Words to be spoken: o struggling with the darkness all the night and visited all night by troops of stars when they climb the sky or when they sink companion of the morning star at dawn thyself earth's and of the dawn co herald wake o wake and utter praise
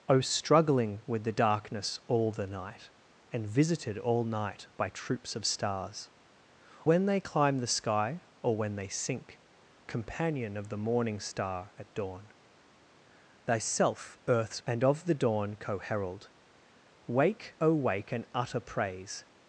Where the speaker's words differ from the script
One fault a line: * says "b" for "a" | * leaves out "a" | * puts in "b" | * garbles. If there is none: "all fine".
all fine